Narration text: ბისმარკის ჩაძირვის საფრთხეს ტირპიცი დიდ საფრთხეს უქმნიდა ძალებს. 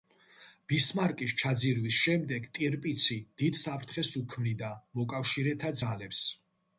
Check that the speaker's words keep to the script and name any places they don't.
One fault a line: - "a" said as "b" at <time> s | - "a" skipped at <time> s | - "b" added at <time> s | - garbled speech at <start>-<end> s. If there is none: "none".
- "საფრთხეს" said as "შემდეგ" at 2.0 s
- "მოკავშირეთა" added at 5.0 s